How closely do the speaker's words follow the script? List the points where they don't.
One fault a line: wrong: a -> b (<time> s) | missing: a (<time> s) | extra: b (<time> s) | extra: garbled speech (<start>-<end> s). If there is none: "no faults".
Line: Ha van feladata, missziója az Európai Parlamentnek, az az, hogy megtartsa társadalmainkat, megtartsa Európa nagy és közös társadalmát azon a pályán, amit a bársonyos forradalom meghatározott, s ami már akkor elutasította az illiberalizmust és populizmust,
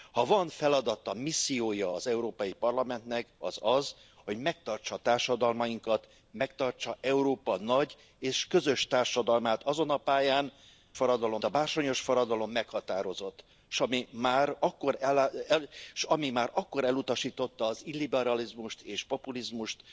wrong: amit -> forradalom (10.9 s)